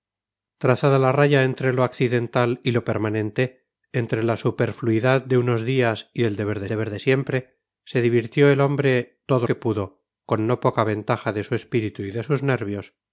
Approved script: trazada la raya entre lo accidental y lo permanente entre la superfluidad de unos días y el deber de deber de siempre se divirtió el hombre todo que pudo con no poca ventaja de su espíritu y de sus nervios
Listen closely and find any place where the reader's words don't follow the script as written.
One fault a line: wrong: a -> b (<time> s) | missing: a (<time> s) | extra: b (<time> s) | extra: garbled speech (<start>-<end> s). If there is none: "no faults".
no faults